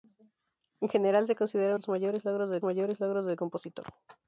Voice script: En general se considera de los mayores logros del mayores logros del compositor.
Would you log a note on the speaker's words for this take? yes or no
no